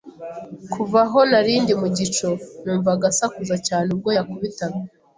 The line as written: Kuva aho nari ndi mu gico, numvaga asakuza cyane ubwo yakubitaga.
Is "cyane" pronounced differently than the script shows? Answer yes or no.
no